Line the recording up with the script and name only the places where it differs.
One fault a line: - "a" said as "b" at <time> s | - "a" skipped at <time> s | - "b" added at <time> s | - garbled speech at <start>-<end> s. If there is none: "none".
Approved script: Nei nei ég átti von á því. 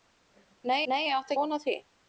none